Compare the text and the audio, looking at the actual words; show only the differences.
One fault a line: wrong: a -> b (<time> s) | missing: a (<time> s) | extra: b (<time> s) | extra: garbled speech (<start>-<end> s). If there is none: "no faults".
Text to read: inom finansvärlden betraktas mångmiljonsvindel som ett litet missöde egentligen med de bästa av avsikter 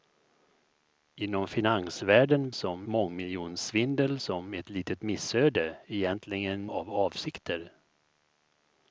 wrong: betraktas -> som (2.5 s)
missing: med de bästa (6.7 s)